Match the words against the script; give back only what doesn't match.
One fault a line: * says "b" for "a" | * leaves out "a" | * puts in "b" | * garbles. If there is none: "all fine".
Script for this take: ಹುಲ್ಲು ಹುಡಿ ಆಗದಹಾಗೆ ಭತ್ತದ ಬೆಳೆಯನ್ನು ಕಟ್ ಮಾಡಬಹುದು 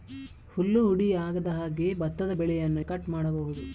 all fine